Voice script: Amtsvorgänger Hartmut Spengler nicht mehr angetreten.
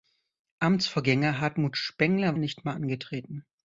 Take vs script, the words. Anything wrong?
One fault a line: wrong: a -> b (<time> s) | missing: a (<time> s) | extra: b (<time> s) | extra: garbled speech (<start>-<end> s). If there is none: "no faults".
no faults